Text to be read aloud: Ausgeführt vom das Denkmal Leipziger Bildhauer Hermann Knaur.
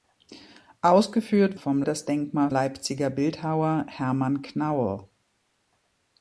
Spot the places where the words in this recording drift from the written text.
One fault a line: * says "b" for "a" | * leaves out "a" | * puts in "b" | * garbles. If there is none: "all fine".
all fine